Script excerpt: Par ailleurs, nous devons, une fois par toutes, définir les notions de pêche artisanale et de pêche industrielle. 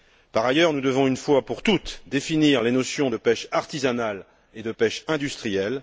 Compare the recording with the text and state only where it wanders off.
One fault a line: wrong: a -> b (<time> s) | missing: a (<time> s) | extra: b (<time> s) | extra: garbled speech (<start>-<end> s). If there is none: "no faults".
wrong: par -> pour (1.4 s)